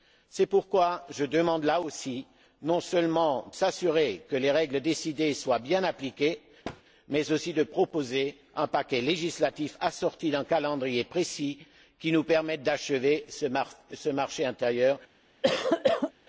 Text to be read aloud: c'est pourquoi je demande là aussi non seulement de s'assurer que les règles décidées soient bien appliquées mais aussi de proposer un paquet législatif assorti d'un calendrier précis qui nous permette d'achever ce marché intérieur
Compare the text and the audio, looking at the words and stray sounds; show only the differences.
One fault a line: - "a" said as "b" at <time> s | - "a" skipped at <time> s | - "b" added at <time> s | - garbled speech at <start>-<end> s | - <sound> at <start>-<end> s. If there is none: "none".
- "de" skipped at 3.5 s
- thud at 6.6-6.8 s
- cough at 15.4-16.1 s